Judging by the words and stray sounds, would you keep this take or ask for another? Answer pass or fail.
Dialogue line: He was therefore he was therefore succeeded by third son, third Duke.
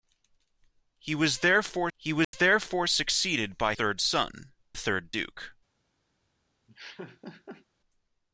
fail